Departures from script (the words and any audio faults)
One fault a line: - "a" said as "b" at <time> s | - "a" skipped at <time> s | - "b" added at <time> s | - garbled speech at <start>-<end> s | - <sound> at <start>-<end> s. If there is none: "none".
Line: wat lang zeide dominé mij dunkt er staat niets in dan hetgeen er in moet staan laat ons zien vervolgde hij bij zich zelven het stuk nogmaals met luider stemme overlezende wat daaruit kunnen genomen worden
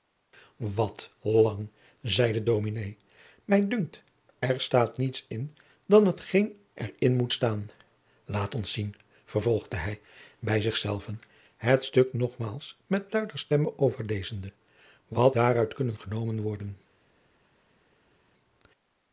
none